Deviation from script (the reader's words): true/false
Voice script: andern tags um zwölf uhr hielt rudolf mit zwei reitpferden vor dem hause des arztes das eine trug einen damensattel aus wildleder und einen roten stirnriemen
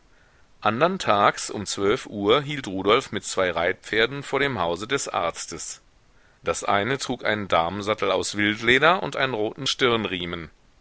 false